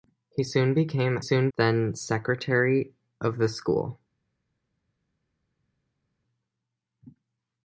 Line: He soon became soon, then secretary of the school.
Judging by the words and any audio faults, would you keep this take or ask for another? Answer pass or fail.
pass